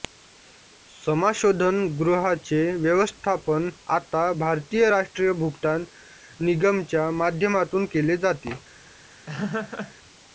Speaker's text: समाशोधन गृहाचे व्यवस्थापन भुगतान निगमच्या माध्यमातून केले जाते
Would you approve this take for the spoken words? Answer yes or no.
no